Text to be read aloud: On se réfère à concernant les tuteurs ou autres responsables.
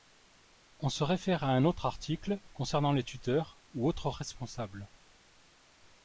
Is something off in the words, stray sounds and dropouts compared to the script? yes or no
yes